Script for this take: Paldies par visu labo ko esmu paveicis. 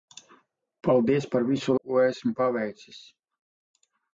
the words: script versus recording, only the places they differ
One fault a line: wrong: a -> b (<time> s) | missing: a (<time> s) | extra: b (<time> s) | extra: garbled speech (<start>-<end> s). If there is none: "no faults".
missing: labo (1.8 s)